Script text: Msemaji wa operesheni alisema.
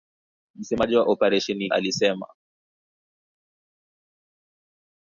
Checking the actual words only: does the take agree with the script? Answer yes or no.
yes